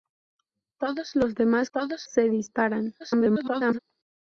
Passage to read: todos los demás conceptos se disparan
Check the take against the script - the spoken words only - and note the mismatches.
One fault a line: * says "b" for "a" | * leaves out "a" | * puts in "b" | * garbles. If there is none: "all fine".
* says "todos" for "conceptos"
* garbles